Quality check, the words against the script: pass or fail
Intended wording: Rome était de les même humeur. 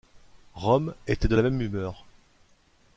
fail